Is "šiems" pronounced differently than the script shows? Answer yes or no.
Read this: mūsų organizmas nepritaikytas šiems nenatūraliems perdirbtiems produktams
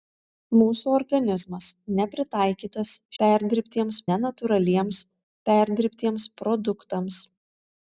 yes